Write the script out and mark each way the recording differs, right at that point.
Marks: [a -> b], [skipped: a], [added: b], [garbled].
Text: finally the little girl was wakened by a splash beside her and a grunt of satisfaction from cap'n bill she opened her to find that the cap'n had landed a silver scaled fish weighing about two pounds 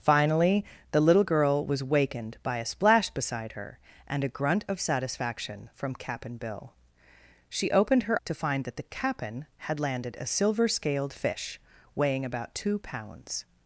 finally the little girl was wakened by a splash beside her and a grunt of satisfaction from cap'n bill she opened her to find that the cap'n had landed a silver scaled fish weighing about two pounds